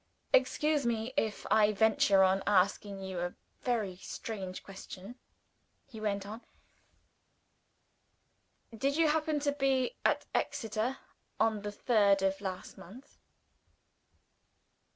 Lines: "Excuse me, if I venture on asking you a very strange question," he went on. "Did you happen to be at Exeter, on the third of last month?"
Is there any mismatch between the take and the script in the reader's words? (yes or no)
no